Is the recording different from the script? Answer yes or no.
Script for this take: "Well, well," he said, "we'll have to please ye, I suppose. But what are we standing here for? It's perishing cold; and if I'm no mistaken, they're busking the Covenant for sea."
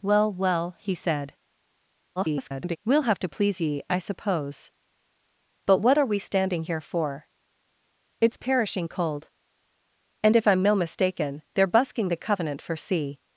yes